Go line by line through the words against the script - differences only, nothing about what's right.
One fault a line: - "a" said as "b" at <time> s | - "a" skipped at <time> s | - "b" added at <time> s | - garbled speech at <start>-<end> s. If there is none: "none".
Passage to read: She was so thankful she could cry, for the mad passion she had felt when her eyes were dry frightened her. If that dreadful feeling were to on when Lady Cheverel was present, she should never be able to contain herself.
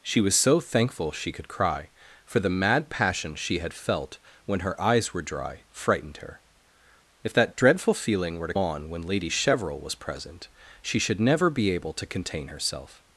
none